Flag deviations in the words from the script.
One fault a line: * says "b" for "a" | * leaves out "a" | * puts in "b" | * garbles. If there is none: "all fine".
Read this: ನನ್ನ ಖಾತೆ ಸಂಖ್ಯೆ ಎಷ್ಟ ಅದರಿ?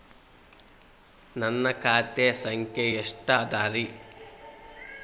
all fine